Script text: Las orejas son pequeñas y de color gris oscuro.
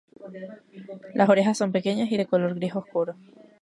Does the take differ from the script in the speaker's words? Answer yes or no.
no